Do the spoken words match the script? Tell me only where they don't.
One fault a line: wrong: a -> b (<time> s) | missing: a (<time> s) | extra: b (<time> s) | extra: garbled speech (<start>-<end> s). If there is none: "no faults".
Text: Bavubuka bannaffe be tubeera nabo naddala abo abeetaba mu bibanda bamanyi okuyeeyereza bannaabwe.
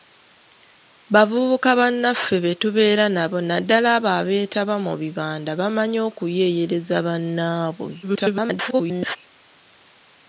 extra: garbled speech (8.0-9.2 s)